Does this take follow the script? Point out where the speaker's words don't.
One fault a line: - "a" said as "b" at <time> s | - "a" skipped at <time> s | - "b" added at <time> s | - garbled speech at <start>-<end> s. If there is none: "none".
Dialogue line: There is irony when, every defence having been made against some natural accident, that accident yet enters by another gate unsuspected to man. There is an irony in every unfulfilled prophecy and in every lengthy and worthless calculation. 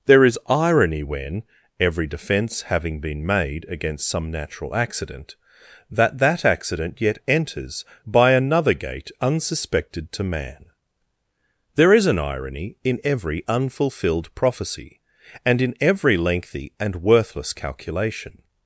- "that" added at 6.2 s